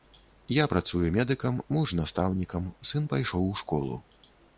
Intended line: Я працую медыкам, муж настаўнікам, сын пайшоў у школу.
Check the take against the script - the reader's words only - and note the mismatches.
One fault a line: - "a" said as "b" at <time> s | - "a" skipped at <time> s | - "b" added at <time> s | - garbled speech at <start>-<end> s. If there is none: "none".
none